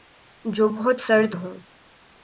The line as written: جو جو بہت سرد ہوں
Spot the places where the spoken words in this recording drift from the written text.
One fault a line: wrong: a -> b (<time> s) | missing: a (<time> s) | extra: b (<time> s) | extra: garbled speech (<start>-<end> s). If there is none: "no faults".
missing: جو (0.7 s)